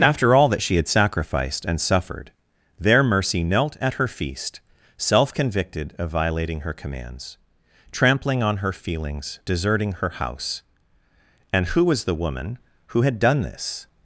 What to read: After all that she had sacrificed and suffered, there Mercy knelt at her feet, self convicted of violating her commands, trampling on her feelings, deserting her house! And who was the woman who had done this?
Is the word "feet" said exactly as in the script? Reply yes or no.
no